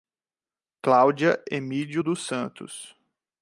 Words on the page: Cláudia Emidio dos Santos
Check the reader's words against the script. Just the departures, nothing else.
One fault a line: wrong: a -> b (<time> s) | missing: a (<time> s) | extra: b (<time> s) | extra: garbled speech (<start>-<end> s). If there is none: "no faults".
no faults